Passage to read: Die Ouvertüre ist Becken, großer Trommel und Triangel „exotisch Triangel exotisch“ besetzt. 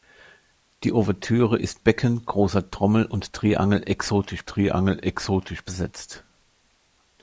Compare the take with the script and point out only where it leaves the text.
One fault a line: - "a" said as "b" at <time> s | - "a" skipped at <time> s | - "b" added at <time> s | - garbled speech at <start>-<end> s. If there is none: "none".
none